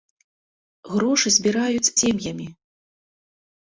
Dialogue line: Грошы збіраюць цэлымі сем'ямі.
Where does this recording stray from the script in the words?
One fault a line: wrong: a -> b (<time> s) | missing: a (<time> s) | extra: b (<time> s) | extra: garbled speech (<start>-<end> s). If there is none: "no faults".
missing: цэлымі (1.9 s)